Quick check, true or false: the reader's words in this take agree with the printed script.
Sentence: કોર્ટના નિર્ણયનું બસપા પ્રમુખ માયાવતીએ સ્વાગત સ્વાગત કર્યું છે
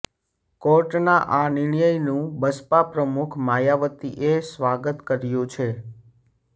false